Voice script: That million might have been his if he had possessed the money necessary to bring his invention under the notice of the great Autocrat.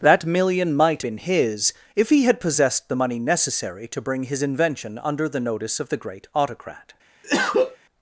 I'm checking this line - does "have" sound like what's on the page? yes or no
no